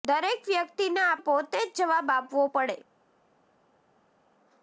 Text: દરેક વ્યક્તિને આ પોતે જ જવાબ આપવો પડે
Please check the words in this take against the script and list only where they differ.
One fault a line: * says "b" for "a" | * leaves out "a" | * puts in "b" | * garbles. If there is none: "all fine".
all fine